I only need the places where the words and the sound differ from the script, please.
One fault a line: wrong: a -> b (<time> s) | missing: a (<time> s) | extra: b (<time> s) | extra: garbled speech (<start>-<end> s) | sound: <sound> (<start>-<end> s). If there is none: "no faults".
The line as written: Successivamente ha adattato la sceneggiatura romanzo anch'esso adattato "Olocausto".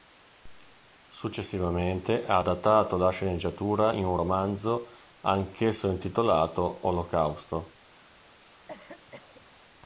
extra: in un (3.9 s)
wrong: adattato -> intitolato (5.9 s)
sound: cough (8.7-9.5 s)